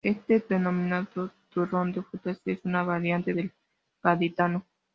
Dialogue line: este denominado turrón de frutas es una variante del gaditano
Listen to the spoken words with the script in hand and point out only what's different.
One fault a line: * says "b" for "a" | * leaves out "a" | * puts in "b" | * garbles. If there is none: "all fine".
all fine